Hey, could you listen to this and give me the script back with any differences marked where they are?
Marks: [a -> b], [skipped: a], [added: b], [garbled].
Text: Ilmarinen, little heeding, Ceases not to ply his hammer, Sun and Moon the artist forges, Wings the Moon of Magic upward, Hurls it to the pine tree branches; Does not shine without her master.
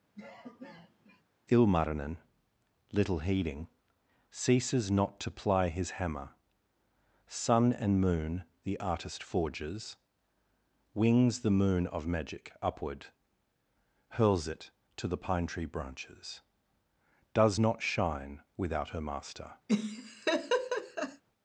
Ilmarinen, little heeding, Ceases not to ply his hammer, Sun and Moon the artist forges, Wings the Moon of Magic upward, Hurls it to the pine tree branches; Does not shine without her master.